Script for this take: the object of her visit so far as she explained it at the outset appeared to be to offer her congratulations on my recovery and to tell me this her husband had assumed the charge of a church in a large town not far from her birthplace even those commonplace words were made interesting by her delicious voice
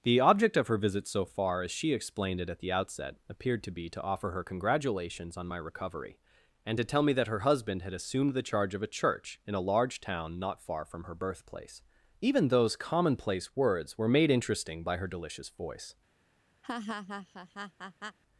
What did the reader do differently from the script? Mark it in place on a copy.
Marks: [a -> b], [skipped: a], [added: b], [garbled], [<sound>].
the object of her visit so far as she explained it at the outset appeared to be to offer her congratulations on my recovery and to tell me [this -> that] her husband had assumed the charge of a church in a large town not far from her birthplace even those commonplace words were made interesting by her delicious voice [laugh]